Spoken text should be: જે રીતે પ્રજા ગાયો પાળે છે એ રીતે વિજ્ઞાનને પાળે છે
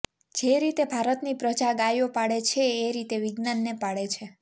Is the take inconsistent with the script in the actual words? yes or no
yes